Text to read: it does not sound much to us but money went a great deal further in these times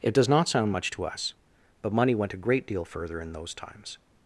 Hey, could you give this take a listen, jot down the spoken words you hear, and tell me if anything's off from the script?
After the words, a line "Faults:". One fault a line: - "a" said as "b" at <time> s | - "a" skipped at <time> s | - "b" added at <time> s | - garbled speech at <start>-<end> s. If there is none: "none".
it does not sound much to us but money went a great deal further in those times
Faults:
- "these" said as "those" at 3.3 s